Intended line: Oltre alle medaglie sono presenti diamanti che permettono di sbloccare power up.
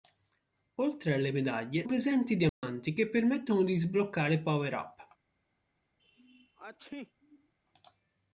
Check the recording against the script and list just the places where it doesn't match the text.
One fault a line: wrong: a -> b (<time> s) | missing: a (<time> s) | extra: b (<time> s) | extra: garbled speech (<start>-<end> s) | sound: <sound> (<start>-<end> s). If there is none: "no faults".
missing: sono (1.9 s)
sound: dropout (2.5-2.6 s)
sound: sneeze (6.0-7.5 s)